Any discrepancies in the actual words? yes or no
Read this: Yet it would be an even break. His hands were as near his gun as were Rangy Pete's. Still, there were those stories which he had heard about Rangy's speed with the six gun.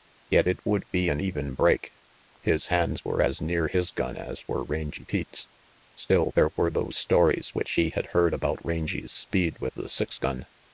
no